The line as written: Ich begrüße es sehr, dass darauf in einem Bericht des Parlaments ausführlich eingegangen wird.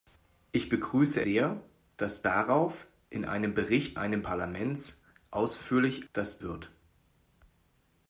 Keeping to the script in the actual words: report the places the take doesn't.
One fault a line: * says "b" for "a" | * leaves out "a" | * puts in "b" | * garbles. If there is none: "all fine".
* leaves out "es"
* says "einem" for "des"
* says "dass" for "eingegangen"